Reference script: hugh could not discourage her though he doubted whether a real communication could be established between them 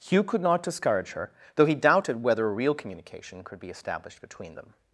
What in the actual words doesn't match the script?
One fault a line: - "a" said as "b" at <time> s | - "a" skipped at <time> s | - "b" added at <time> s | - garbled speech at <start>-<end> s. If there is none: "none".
none